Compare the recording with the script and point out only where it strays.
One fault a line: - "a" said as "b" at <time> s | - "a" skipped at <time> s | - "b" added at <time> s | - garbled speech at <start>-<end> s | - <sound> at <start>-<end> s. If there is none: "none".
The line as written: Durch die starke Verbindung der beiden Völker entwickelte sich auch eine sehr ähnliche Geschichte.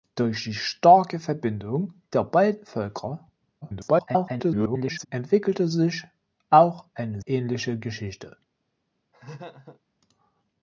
- garbled speech at 3.6-5.1 s
- "sehr" skipped at 7.2 s
- laugh at 9.1-9.8 s